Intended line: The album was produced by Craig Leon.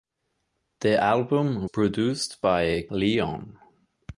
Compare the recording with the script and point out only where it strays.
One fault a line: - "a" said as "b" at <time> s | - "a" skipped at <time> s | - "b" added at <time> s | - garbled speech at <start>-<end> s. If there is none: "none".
- "was" skipped at 1.7 s
- "Craig" skipped at 2.9 s